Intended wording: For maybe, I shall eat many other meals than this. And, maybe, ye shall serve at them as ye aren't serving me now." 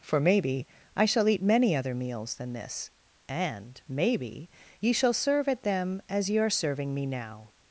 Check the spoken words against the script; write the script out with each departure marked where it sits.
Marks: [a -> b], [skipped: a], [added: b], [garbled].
For maybe, I shall eat many other meals than this. And, maybe, ye shall serve at them as ye [aren't -> are] serving me now."